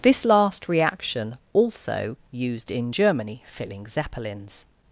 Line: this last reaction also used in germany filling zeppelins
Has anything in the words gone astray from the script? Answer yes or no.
no